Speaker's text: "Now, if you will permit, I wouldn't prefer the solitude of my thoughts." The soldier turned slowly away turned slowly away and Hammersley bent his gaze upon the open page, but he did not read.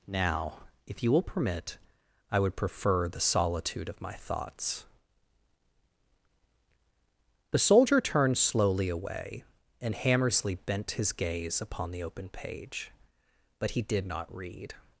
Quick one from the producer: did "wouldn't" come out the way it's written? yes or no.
no